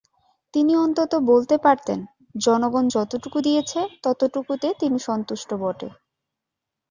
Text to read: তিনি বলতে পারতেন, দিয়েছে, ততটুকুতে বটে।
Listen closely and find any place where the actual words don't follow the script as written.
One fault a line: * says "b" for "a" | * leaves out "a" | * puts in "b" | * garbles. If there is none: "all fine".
* puts in "অন্তত"
* puts in "জনগণ যতটুকু"
* puts in "তিনি সন্তুষ্ট"